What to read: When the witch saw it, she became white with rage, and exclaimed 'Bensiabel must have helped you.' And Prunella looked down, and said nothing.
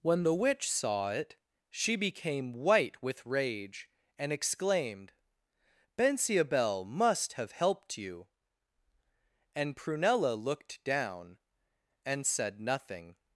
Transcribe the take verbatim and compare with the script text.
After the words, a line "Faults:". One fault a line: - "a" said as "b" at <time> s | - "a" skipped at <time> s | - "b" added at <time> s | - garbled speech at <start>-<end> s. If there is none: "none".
When the witch saw it, she became white with rage, and exclaimed 'Bensiabel must have helped you.' And Prunella looked down, and said nothing.
Faults:
none